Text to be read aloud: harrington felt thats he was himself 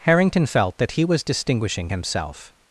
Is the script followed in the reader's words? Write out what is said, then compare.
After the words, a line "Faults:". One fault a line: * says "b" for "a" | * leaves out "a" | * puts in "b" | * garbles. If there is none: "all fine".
harrington felt that he was distinguishing himself
Faults:
* says "that" for "thats"
* puts in "distinguishing"